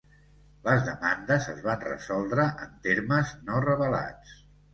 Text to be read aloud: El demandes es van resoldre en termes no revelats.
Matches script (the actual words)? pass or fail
fail